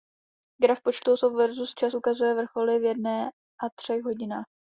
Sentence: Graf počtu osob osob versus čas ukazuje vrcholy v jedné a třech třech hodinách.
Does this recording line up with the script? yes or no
no